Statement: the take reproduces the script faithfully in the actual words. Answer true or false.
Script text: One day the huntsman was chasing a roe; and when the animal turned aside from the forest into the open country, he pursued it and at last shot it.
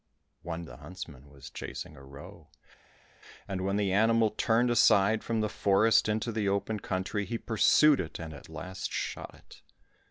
false